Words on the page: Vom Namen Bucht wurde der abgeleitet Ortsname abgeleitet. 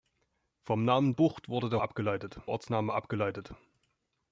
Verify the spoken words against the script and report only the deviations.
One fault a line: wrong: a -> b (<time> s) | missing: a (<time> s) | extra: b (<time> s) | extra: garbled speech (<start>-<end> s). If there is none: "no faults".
no faults